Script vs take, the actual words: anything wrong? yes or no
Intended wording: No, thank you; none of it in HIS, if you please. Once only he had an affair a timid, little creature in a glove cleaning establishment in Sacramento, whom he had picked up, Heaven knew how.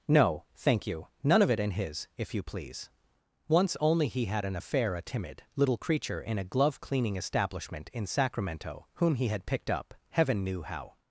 no